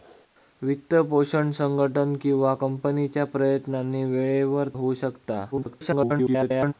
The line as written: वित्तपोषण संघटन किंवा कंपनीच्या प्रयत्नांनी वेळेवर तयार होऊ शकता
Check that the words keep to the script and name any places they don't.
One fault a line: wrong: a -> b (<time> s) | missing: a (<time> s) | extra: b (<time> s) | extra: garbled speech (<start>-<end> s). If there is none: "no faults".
missing: तयार (4.7 s)
extra: garbled speech (5.5-6.7 s)